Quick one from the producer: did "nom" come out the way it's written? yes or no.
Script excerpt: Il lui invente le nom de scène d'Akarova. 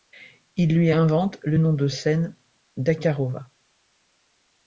yes